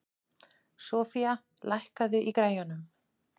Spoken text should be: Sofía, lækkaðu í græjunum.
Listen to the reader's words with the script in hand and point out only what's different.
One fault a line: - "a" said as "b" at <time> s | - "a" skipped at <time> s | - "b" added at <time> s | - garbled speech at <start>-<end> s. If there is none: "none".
none